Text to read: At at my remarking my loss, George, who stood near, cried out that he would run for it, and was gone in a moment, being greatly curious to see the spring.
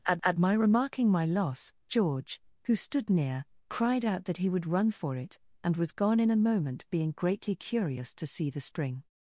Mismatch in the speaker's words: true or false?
false